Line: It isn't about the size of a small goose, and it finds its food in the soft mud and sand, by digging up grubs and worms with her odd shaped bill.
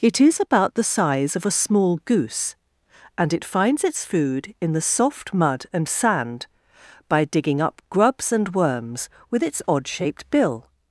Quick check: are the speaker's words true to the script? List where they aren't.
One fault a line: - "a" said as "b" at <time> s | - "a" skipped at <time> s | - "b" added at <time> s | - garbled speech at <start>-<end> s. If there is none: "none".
- "isn't" said as "is" at 0.2 s
- "her" said as "its" at 9.4 s